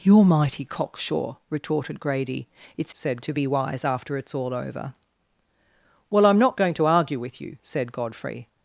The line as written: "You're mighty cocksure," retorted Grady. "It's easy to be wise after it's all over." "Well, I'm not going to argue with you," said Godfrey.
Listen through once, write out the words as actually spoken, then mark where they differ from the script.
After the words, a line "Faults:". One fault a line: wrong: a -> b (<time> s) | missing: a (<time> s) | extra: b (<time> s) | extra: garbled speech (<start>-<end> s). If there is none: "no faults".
"You're mighty cocksure," retorted Grady. "It's said to be wise after it's all over." "Well, I'm not going to argue with you," said Godfrey.
Faults:
wrong: easy -> said (2.9 s)